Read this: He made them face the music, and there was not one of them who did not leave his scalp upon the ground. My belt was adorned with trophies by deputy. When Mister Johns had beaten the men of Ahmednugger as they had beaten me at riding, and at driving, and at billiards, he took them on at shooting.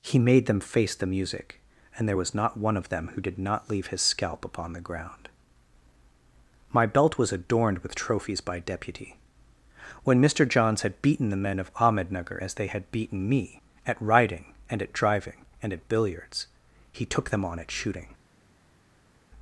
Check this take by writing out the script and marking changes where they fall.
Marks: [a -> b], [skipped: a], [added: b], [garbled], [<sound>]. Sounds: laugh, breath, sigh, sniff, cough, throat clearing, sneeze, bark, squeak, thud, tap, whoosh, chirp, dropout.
He made them face the music, and there was not one of them who did not leave his scalp upon the ground. My belt was adorned with trophies by deputy. When Mister Johns had beaten the men of Ahmednugger as they had beaten me at riding, and at driving, and at billiards, he took them on at shooting.